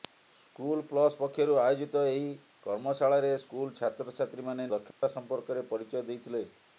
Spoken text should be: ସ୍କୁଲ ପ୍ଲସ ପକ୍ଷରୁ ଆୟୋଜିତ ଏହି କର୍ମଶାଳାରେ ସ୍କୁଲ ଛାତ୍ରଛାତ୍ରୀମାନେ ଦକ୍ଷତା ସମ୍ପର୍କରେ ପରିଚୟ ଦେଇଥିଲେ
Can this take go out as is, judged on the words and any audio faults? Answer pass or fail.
fail